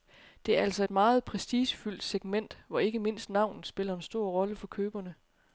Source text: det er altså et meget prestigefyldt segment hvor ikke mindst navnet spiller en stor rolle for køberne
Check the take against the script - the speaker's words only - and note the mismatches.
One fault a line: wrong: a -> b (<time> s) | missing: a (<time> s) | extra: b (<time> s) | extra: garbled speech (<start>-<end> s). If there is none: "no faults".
no faults